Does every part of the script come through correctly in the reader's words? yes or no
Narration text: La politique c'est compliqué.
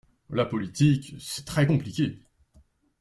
no